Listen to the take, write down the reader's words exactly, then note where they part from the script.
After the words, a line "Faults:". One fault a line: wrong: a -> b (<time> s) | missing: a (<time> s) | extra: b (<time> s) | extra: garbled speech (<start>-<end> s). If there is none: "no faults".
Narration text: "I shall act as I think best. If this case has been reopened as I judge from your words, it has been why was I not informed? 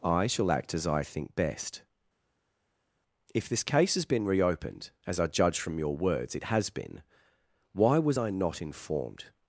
"I shall act as I think best. If this case has been reopened as I judge from your words, it has been why was I not informed?
Faults:
no faults